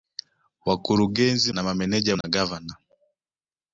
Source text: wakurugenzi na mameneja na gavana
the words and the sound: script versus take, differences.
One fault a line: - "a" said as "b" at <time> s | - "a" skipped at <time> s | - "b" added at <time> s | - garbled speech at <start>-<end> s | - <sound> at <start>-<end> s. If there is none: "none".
- dropout at 2.2-2.2 s